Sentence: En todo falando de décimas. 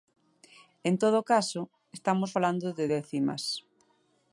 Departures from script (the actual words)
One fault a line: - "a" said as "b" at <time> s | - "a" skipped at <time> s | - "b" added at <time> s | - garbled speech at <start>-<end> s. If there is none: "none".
- "caso estamos" added at 1.3 s